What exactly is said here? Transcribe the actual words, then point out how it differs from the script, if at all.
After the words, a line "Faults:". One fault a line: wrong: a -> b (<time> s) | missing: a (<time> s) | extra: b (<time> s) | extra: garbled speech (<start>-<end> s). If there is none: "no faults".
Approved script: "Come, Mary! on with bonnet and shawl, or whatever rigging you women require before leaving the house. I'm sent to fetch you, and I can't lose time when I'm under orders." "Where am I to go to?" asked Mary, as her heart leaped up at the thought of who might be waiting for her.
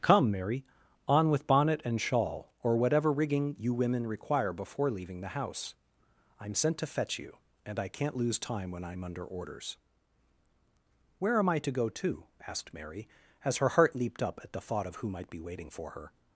"Come, Mary! on with bonnet and shawl, or whatever rigging you women require before leaving the house. I'm sent to fetch you, and I can't lose time when I'm under orders." "Where am I to go to?" asked Mary, as her heart leaped up at the thought of who might be waiting for her.
Faults:
no faults